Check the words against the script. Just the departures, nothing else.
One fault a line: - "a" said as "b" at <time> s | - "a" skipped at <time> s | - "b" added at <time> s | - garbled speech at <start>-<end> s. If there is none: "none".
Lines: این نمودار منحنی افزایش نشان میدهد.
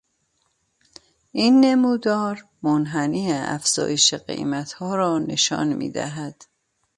- "قیمتها را" added at 4.1 s